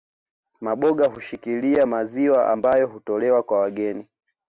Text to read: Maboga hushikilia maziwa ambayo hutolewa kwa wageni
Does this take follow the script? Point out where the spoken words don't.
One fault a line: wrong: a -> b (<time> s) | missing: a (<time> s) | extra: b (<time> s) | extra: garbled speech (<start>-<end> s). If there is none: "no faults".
no faults